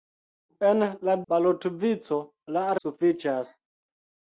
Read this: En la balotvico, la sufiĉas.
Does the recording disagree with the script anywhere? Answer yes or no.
no